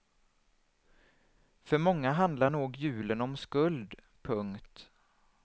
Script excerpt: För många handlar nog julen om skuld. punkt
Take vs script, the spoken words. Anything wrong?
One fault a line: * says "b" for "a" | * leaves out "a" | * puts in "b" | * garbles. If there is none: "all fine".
all fine